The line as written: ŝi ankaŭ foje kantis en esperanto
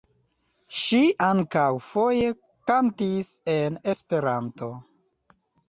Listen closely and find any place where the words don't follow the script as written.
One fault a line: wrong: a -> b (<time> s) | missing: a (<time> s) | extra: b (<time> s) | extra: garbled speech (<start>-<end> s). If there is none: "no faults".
no faults